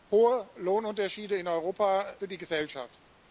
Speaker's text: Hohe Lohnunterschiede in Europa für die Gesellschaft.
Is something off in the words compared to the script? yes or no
no